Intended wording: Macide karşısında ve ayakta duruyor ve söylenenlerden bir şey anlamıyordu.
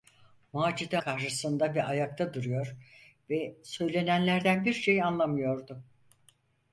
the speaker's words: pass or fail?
pass